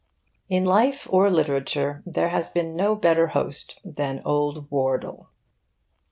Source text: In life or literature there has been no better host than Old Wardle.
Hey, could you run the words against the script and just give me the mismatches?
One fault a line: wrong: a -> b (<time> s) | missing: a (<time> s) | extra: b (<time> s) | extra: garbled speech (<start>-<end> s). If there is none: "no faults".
no faults